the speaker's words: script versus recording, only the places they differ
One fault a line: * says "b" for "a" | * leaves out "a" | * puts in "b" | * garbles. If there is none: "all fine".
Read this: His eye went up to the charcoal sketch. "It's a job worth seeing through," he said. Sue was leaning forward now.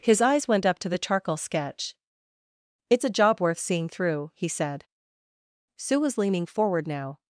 * says "eyes" for "eye"